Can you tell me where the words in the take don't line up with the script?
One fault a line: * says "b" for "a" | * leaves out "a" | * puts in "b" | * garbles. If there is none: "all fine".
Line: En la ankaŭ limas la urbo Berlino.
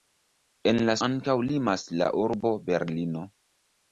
all fine